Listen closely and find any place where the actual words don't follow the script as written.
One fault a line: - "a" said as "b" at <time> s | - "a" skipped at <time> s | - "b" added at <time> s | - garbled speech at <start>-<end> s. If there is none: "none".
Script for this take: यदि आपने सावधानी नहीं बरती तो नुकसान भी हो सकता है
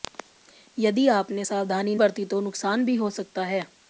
- "नहीं" skipped at 1.9 s